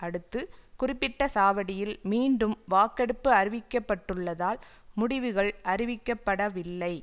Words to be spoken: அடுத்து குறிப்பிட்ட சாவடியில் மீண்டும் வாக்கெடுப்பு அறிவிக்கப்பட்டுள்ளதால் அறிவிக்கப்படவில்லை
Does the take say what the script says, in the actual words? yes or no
no